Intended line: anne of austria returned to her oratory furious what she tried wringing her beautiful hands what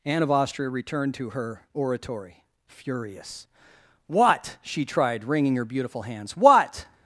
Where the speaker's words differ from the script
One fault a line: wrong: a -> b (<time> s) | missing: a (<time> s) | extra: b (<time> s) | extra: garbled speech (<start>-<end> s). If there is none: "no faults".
no faults